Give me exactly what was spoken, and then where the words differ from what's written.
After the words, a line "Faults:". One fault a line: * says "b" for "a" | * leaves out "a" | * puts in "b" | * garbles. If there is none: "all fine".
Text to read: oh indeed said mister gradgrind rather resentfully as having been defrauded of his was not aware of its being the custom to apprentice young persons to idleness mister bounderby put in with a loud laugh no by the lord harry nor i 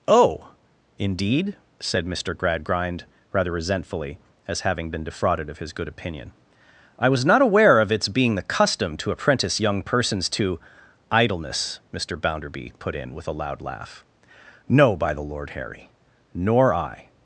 oh indeed said mister gradgrind rather resentfully as having been defrauded of his good opinion i was not aware of its being the custom to apprentice young persons to idleness mister bounderby put in with a loud laugh no by the lord harry nor i
Faults:
* puts in "good opinion i"